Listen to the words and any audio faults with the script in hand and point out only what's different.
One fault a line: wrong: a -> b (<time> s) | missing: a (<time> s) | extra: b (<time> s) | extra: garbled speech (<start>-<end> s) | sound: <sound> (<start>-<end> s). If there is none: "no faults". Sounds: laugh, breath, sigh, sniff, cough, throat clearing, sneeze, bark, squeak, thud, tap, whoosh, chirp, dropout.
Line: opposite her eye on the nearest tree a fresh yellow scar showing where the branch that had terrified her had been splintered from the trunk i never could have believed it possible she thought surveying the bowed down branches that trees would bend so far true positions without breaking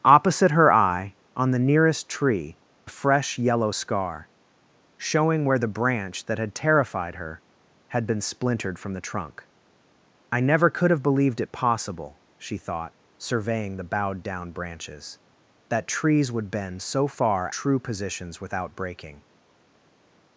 no faults